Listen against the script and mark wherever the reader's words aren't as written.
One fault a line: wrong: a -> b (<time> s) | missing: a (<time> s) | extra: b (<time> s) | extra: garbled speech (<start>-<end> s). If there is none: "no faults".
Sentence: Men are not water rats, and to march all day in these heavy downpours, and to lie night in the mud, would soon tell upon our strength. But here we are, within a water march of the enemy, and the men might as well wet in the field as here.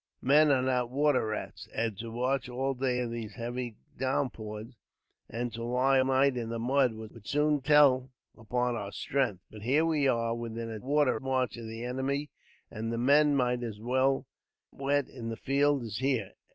no faults